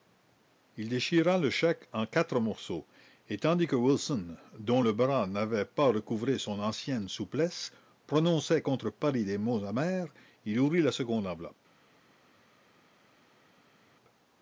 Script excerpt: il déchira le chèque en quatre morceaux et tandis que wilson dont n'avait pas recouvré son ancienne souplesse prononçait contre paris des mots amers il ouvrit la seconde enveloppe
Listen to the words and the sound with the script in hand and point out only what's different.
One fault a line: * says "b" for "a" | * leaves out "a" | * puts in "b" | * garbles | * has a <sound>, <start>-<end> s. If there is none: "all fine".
* puts in "le bras"